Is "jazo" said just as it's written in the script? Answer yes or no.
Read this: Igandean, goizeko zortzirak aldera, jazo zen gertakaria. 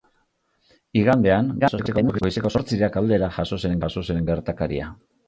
yes